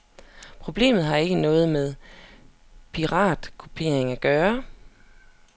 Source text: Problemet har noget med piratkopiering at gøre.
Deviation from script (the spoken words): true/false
true